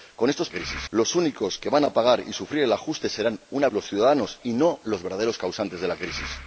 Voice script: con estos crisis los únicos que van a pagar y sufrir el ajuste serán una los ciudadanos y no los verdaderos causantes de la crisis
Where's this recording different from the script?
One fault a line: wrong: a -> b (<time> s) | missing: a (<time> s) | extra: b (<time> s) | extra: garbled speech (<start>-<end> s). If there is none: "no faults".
no faults